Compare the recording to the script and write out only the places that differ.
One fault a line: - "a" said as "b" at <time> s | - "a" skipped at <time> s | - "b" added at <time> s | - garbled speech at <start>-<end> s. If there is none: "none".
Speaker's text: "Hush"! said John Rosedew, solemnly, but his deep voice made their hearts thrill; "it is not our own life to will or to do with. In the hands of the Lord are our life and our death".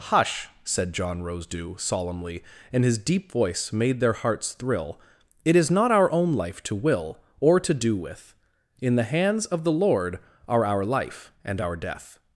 - "but" said as "and" at 2.7 s